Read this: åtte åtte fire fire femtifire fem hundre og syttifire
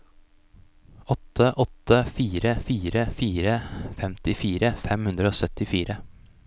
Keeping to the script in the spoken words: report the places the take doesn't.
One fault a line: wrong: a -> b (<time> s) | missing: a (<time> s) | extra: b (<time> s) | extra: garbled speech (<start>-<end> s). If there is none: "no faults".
extra: fire (3.2 s)